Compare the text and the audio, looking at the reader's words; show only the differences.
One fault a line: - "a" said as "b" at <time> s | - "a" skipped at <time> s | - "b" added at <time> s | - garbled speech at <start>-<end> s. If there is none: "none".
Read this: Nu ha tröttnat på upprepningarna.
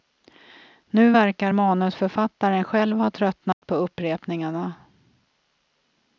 - "verkar manusförfattaren själv" added at 1.1 s